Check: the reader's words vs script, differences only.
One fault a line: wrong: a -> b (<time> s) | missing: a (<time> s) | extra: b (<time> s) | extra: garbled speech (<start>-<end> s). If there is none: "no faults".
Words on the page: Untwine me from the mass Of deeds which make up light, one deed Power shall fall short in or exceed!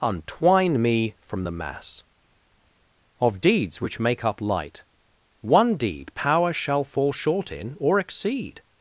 no faults